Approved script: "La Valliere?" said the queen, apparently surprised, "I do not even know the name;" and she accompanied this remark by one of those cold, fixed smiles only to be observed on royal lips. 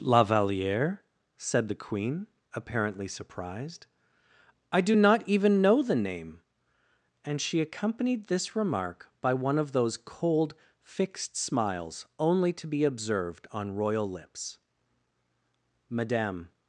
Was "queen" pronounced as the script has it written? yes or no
yes